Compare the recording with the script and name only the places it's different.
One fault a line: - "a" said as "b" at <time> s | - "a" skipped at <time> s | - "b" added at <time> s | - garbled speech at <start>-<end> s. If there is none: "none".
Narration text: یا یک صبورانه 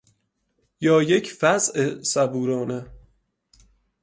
- "وضع" added at 1.4 s